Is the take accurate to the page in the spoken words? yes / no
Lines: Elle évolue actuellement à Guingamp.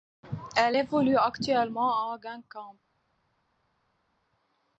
yes